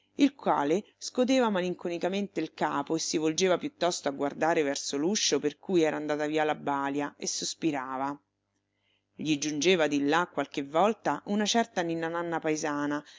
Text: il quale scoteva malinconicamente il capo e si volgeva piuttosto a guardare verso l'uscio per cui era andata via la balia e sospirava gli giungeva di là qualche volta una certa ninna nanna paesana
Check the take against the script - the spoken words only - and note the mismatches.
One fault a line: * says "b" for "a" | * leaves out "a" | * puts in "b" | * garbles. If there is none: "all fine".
all fine